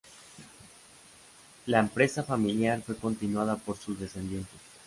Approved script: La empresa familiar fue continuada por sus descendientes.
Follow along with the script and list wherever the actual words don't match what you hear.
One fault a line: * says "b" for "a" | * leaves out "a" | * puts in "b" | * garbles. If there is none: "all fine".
all fine